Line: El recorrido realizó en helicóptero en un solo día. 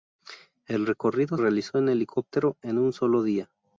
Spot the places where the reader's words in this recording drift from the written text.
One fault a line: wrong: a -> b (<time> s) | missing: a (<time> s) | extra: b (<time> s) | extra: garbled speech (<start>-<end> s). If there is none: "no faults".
no faults